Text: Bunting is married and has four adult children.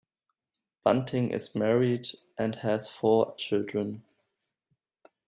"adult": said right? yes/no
no